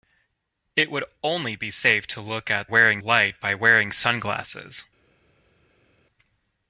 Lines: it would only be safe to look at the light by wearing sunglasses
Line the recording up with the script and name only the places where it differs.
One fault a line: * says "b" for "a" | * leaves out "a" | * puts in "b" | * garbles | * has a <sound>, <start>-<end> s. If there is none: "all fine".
* says "wearing" for "the"